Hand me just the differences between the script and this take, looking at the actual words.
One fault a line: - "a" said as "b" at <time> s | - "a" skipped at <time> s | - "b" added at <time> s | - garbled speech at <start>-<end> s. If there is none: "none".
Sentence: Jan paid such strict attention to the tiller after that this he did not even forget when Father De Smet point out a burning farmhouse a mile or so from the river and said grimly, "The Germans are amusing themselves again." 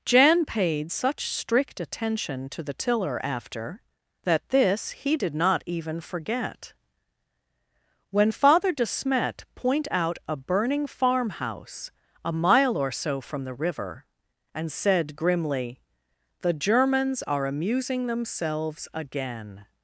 none